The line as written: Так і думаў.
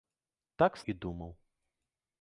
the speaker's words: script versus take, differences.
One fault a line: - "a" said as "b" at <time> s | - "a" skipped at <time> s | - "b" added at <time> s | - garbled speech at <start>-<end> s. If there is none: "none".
none